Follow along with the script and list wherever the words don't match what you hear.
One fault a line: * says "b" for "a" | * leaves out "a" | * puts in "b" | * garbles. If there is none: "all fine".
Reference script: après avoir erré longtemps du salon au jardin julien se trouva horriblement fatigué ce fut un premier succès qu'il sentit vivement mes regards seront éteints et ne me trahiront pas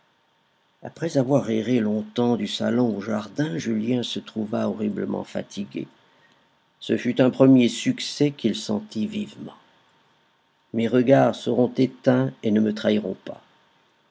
all fine